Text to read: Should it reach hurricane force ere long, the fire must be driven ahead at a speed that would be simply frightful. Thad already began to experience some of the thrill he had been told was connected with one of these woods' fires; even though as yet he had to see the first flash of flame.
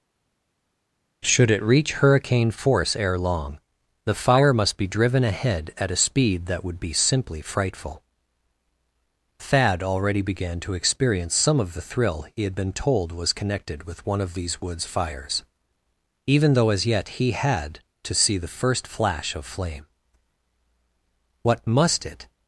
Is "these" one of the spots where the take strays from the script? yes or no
no